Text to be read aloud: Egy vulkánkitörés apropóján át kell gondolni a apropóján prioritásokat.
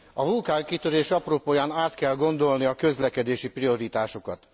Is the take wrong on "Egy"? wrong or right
wrong